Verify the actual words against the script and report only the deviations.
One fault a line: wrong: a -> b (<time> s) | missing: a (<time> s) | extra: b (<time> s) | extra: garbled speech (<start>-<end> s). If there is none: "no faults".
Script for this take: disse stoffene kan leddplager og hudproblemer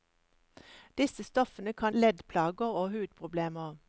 no faults